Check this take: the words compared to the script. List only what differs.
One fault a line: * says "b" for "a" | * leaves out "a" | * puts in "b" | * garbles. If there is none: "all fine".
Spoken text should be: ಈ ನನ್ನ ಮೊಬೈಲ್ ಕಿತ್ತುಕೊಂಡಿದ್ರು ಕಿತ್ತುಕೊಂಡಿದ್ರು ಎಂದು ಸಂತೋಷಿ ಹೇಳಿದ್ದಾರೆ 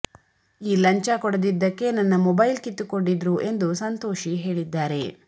* puts in "ಲಂಚ ಕೊಡದಿದ್ದಕ್ಕೆ"
* leaves out "ಕಿತ್ತುಕೊಂಡಿದ್ರು"